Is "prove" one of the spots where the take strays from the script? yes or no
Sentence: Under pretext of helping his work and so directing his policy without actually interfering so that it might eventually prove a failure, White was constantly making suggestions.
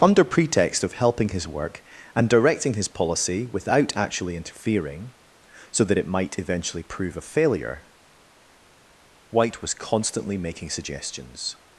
no